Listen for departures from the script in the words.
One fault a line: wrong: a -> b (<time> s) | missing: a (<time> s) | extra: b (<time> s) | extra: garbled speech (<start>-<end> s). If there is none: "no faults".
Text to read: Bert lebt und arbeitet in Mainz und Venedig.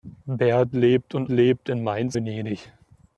wrong: arbeitet -> lebt (1.3 s)
missing: und (2.2 s)